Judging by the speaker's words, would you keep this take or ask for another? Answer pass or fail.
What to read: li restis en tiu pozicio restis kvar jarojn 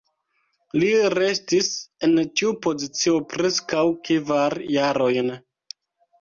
fail